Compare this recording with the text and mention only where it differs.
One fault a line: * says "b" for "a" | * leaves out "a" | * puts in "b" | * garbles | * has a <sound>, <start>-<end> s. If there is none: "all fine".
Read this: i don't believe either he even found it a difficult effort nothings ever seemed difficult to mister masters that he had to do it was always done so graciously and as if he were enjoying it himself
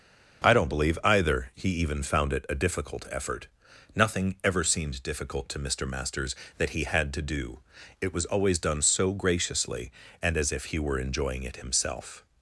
* says "nothing" for "nothings"